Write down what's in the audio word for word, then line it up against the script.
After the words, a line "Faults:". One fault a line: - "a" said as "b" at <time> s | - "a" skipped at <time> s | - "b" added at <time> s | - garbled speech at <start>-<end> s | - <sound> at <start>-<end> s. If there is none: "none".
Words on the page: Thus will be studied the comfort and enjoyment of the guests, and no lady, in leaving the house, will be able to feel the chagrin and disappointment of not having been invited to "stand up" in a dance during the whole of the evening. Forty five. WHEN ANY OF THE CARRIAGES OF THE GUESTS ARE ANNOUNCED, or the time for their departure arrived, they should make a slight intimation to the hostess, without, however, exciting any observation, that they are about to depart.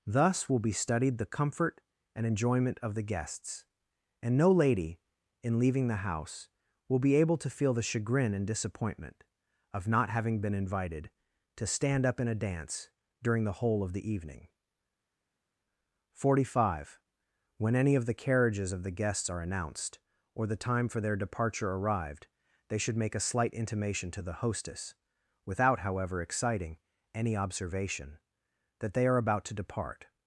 Thus will be studied the comfort and enjoyment of the guests, and no lady, in leaving the house, will be able to feel the chagrin and disappointment of not having been invited to "stand up" in a dance during the whole of the evening. Forty five. WHEN ANY OF THE CARRIAGES OF THE GUESTS ARE ANNOUNCED, or the time for their departure arrived, they should make a slight intimation to the hostess, without, however, exciting any observation, that they are about to depart.
Faults:
none